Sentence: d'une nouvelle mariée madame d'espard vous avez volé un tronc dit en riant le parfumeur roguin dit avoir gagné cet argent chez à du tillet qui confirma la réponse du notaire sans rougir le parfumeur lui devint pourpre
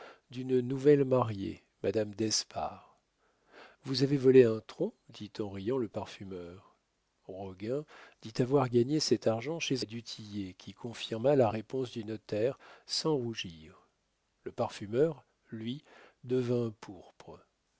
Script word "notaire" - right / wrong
right